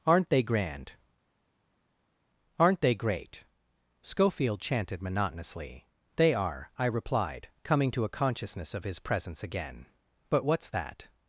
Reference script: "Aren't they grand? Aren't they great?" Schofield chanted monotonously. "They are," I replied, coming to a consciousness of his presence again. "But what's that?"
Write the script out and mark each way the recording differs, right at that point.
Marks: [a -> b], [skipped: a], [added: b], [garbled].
"Aren't they grand? Aren't they great?" Schofield chanted monotonously. "They are," I replied, coming to a consciousness of his presence again. "But what's that?"